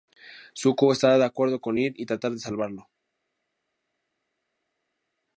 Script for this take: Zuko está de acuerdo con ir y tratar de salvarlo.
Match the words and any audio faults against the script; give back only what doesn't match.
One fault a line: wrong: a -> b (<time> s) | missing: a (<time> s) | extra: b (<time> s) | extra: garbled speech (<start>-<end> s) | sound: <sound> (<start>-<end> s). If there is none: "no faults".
no faults